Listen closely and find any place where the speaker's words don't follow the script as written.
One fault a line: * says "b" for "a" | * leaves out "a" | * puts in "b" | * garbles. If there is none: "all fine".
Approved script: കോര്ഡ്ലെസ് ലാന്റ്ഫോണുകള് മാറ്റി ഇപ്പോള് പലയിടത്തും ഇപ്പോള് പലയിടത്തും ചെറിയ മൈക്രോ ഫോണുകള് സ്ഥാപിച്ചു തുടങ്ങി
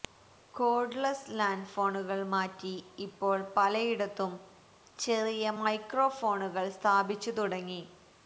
* leaves out "ഇപ്പോള് പലയിടത്തും"